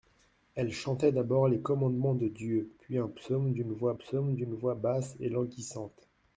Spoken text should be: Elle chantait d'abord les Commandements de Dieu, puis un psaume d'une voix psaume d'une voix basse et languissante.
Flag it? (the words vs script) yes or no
no